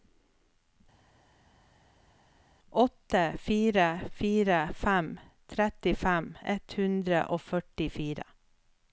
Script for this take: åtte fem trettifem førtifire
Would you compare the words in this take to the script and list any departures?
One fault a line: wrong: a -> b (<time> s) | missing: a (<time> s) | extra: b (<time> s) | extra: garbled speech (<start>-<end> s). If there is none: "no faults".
extra: fire fire (3.4 s)
extra: ett hundre og (6.4 s)